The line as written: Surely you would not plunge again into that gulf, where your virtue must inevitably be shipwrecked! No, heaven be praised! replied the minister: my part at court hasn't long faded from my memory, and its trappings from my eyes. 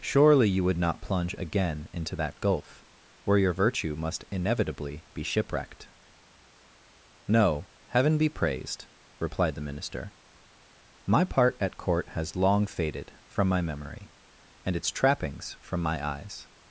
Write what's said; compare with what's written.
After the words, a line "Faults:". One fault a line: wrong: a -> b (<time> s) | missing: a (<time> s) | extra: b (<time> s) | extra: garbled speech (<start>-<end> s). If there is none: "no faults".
Surely you would not plunge again into that gulf, where your virtue must inevitably be shipwrecked! No, heaven be praised! replied the minister: my part at court has long faded from my memory, and its trappings from my eyes.
Faults:
wrong: hasn't -> has (12.1 s)